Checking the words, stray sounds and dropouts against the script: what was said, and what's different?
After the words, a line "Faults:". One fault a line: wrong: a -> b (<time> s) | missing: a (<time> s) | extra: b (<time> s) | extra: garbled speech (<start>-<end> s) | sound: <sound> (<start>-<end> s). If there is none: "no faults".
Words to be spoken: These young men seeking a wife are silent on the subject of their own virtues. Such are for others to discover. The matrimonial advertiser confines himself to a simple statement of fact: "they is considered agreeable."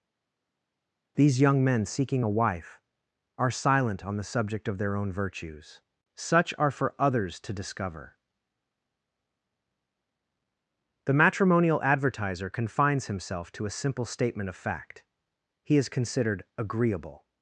These young men seeking a wife are silent on the subject of their own virtues. Such are for others to discover. The matrimonial advertiser confines himself to a simple statement of fact: "he is considered agreeable."
Faults:
wrong: they -> he (15.6 s)